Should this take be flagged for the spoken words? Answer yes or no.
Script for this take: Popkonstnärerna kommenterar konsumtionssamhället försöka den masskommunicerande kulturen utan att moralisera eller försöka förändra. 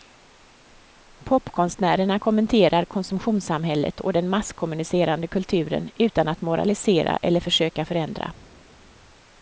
yes